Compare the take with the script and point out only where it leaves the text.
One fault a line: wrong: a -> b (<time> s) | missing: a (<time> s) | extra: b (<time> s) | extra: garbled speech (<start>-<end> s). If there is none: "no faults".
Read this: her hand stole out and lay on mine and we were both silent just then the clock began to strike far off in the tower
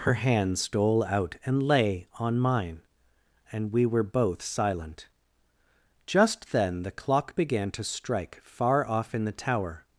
no faults